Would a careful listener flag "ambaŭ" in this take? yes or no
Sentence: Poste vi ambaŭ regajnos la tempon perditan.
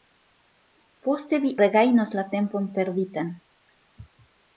yes